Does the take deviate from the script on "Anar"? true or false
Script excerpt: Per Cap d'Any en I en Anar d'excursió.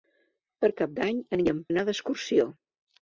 false